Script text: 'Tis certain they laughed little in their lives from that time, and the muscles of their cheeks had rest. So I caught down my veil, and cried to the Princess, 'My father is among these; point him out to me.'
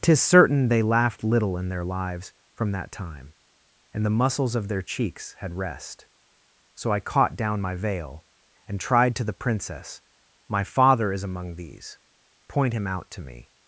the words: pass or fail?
fail